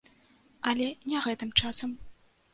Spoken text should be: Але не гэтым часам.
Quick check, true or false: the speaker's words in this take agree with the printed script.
true